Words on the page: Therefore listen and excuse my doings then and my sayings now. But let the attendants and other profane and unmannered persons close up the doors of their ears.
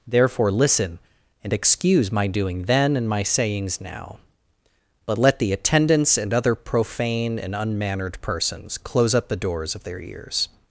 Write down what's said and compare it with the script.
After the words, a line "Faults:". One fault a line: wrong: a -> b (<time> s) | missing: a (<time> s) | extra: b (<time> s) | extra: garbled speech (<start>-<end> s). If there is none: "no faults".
Therefore listen and excuse my doing then and my sayings now. But let the attendants and other profane and unmannered persons close up the doors of their ears.
Faults:
wrong: doings -> doing (2.3 s)